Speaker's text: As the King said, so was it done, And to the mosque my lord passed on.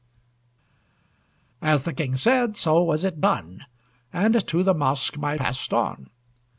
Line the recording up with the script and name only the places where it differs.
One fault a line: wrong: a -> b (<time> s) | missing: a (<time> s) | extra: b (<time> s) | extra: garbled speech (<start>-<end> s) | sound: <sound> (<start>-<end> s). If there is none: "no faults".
missing: lord (5.4 s)